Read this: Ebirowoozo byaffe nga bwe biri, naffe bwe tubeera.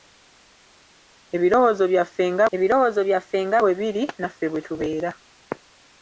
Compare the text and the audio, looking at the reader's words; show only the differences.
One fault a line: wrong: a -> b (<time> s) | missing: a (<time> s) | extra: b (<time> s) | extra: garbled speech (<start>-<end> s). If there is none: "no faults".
extra: ebirowoozo byaffe nga (2.5 s)